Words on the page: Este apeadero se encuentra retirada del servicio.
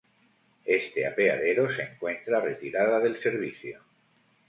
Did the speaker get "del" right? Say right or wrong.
right